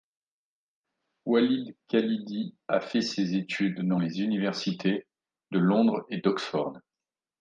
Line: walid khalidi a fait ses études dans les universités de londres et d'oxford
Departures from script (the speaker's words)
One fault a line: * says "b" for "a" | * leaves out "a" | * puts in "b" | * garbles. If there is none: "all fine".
all fine